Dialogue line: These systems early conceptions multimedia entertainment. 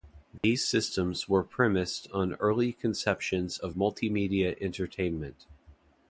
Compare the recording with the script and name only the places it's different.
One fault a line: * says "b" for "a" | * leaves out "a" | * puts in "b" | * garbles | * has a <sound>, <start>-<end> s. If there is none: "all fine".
* has a dropout, 0.4-0.4 s
* puts in "were premised on"
* puts in "of"